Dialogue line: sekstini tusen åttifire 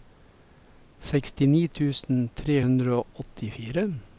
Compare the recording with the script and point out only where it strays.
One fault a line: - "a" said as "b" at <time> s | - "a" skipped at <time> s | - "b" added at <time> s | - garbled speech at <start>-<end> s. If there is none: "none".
- "tre hundre og" added at 2.4 s